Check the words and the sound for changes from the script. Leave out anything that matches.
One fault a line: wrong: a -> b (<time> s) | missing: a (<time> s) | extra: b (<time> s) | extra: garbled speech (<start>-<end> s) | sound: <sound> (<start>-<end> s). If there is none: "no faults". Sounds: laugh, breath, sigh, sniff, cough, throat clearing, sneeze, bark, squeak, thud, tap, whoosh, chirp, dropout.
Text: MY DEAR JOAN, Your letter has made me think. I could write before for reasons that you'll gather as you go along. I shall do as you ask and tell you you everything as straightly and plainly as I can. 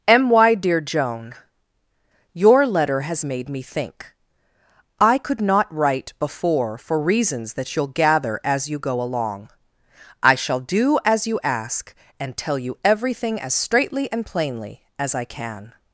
extra: not (5.4 s)
missing: you (12.8 s)